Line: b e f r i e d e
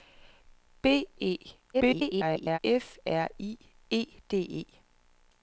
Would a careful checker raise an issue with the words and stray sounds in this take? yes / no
yes